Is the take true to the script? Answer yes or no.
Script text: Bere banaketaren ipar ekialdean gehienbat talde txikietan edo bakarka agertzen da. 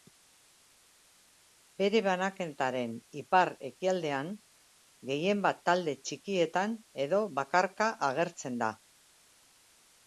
yes